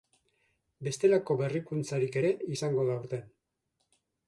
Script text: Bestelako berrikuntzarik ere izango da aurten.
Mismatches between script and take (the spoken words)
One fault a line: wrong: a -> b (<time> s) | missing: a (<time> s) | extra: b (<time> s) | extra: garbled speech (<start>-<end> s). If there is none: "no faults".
no faults